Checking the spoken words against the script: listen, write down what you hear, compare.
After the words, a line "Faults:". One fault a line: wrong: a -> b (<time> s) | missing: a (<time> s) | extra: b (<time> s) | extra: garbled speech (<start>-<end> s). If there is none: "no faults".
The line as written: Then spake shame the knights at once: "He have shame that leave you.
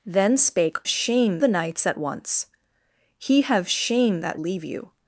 Then spake shame the knights at once: "He have shame that leave you.
Faults:
no faults